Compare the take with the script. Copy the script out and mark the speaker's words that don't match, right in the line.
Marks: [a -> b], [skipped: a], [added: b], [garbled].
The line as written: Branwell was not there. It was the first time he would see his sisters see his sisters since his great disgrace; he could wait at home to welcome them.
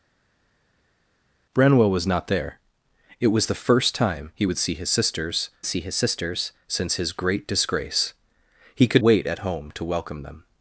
Branwell was not there. It was the first time he would see his sisters see his sisters since his great disgrace; he could wait at home to welcome them.